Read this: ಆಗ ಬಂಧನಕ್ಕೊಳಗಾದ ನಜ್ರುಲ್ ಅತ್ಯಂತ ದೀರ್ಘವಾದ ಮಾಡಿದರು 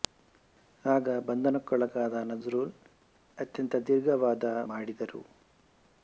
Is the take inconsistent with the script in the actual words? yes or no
no